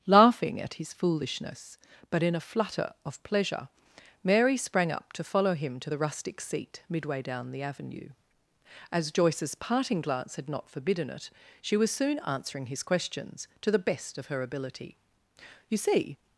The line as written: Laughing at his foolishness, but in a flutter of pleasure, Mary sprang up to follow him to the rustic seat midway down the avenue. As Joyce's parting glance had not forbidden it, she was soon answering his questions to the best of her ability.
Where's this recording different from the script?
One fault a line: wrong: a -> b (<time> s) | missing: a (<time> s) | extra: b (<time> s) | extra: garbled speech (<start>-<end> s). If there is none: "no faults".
extra: You see (15.7 s)